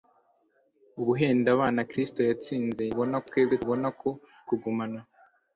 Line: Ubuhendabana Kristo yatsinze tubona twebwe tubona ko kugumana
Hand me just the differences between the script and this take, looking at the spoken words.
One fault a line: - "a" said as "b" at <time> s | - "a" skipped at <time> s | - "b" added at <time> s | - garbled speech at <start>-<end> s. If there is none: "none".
none